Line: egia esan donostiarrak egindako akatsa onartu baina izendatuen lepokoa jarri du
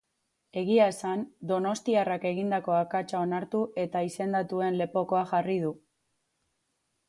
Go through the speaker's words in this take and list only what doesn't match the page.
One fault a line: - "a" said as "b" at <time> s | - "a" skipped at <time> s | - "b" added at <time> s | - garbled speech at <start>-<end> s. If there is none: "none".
- "baina" said as "eta" at 3.9 s